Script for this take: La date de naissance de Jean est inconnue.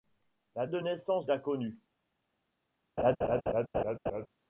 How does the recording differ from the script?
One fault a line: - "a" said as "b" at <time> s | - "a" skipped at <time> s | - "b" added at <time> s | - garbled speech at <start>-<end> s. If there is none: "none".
- "date" skipped at 0.7 s
- "de Jean est" skipped at 1.3 s